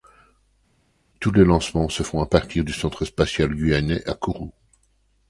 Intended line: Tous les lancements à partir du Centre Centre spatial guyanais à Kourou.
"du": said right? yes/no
yes